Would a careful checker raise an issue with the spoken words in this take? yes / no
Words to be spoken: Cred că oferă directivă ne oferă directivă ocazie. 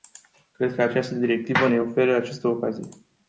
yes